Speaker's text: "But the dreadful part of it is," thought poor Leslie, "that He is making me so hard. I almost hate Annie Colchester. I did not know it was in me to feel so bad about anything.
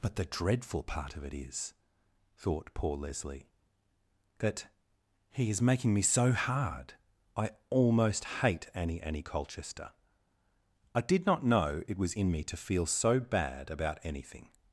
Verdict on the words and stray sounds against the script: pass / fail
fail